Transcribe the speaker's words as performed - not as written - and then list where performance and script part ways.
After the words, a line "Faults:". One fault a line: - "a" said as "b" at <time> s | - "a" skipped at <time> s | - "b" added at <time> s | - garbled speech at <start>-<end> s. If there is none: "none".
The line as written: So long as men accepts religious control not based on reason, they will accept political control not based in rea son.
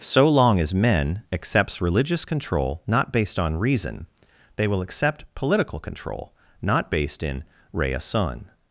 So long as men accepts religious control not based on reason, they will accept political control not based in rea son.
Faults:
none